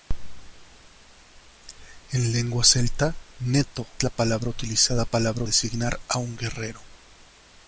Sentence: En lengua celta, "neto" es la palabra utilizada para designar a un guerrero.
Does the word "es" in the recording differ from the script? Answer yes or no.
yes